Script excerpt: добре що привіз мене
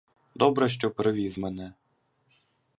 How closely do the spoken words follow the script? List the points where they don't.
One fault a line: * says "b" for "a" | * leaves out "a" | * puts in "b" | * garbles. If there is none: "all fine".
all fine